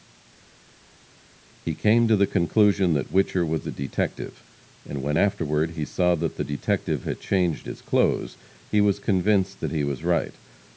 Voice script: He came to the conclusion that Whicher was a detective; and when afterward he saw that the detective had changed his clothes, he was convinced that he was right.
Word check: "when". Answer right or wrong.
right